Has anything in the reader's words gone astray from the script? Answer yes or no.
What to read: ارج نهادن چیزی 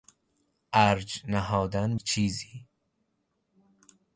no